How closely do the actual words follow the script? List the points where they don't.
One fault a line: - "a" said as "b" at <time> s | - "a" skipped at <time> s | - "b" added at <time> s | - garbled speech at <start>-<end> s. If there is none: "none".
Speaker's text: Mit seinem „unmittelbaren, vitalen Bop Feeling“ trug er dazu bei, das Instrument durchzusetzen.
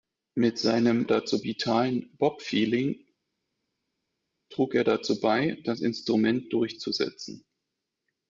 - "unmittelbaren" said as "dazu" at 1.0 s